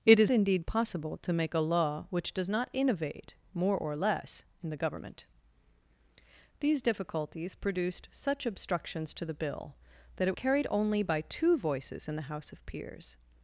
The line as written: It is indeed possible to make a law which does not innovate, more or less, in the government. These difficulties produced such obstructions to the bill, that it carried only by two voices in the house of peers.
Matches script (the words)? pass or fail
pass